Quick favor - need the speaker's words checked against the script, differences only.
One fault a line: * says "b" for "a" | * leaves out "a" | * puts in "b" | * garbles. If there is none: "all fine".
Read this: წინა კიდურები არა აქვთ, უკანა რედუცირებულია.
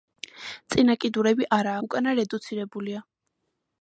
* leaves out "აქვთ"